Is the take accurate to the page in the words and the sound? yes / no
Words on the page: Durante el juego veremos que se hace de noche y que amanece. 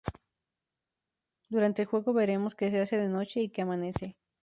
yes